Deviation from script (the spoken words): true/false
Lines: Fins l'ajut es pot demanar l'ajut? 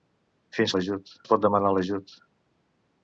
false